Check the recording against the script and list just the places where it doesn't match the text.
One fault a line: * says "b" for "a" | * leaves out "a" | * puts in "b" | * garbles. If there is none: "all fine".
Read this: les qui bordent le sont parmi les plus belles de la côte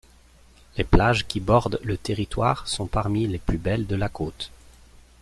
* puts in "plages"
* puts in "territoire"